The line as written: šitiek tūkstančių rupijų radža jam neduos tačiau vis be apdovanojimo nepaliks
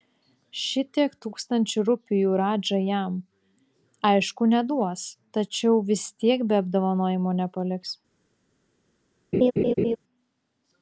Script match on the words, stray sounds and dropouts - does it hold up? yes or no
no